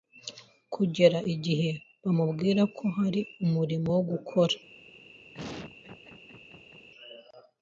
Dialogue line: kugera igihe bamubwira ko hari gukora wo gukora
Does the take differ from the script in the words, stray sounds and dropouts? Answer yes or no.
yes